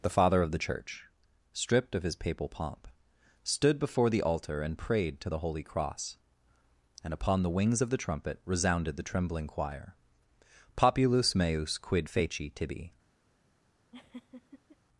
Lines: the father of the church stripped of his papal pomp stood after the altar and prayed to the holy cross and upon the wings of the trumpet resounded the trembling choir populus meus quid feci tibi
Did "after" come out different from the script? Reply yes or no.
yes